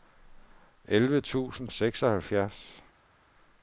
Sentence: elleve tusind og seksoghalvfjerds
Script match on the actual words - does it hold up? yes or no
yes